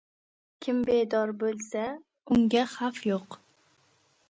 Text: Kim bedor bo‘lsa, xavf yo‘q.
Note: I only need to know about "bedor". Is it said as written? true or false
true